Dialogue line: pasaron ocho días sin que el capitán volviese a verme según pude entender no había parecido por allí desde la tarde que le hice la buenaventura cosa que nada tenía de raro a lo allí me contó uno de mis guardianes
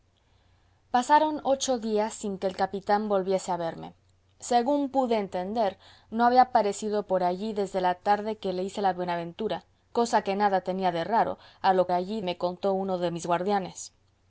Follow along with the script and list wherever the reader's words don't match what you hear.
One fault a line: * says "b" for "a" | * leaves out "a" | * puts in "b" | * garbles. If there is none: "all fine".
all fine